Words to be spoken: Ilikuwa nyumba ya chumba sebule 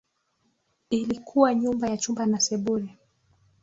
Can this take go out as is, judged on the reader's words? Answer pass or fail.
fail